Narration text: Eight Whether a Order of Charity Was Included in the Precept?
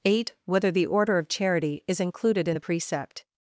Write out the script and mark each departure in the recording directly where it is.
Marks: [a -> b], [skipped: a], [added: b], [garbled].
Eight Whether [a -> the] Order of Charity [Was -> Is] Included in the Precept?